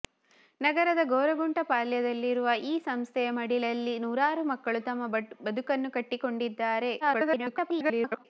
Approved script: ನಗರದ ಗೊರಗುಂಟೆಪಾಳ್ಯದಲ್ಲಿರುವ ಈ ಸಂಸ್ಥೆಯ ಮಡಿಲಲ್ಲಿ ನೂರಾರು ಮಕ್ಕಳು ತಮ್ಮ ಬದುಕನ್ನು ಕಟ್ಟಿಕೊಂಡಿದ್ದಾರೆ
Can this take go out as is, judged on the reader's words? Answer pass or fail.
fail